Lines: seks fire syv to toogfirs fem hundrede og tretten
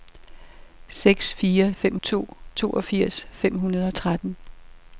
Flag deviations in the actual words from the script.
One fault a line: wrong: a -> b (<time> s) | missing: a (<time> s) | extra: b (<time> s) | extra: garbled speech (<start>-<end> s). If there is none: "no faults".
wrong: syv -> fem (1.7 s)